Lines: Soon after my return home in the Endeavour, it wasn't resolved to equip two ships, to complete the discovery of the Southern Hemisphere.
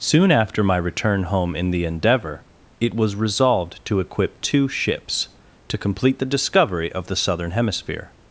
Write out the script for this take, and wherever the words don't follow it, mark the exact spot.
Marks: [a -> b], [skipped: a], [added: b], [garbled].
Soon after my return home in the Endeavour, it [wasn't -> was] resolved to equip two ships, to complete the discovery of the Southern Hemisphere.